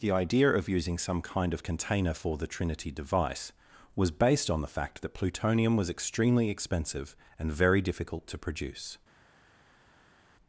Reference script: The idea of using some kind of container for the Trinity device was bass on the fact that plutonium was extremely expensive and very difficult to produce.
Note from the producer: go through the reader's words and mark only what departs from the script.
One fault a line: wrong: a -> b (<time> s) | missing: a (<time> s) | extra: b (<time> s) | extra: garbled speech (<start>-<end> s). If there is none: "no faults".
wrong: bass -> based (4.1 s)